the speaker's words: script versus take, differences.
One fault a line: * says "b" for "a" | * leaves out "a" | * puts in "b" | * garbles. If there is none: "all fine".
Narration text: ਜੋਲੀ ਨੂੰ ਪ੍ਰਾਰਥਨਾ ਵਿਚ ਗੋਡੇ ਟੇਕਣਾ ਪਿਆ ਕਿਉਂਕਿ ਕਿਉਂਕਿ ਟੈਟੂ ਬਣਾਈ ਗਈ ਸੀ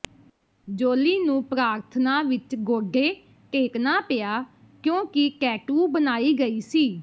* leaves out "ਕਿਉਂਕਿ"